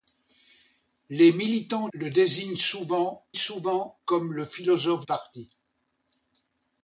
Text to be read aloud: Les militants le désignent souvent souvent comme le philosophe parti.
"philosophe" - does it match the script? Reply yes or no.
yes